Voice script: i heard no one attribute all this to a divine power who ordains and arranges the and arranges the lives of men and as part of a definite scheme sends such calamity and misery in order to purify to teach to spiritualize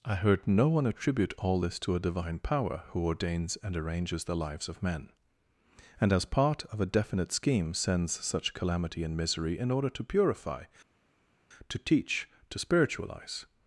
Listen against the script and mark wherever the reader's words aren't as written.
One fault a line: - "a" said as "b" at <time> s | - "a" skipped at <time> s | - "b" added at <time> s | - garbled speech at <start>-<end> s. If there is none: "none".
- "and arranges the" skipped at 4.4 s